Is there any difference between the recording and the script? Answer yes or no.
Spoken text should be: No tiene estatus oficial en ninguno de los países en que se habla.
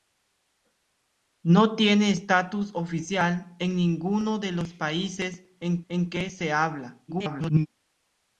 yes